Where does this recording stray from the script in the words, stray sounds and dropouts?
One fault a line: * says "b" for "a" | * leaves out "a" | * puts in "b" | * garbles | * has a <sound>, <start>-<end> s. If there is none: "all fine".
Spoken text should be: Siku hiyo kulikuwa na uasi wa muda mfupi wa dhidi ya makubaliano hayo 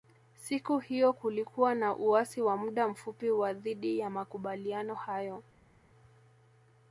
all fine